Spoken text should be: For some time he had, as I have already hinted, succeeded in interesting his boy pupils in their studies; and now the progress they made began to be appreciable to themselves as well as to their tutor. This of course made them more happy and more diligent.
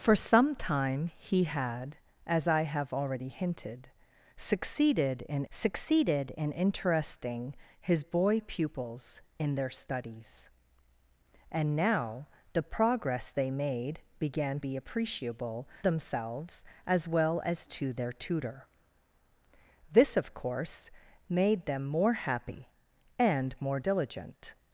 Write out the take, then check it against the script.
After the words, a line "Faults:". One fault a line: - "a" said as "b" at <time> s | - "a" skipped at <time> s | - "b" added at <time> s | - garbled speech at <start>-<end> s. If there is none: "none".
For some time he had, as I have already hinted, succeeded in succeeded in interesting his boy pupils in their studies; and now the progress they made began be appreciable themselves as well as to their tutor. This of course made them more happy and more diligent.
Faults:
- "succeeded in" added at 5.5 s
- "to" skipped at 14.6 s
- "to" skipped at 15.7 s